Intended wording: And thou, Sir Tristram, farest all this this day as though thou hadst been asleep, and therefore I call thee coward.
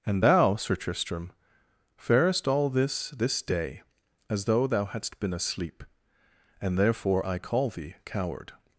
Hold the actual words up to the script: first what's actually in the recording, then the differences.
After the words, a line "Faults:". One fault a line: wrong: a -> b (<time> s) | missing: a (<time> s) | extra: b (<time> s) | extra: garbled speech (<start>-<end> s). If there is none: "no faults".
And thou, Sir Tristram, farest all this this day as though thou hadst been asleep, and therefore I call thee coward.
Faults:
no faults